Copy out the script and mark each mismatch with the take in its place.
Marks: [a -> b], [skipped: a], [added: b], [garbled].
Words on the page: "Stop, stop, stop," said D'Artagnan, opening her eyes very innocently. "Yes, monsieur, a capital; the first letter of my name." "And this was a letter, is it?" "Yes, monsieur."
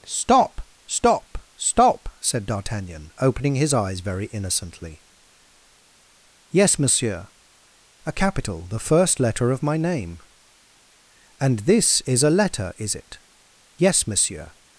"Stop, stop, stop," said D'Artagnan, opening [her -> his] eyes very innocently. "Yes, monsieur, a capital; the first letter of my name." "And this [was -> is] a letter, is it?" "Yes, monsieur."